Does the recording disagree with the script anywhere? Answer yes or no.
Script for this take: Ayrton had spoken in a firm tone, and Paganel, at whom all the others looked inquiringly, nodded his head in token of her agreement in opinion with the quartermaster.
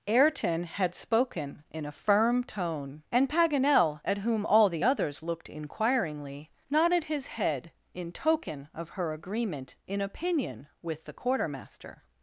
no